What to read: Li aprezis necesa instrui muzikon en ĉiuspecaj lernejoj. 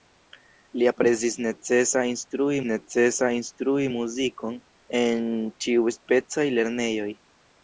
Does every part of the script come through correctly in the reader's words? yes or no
no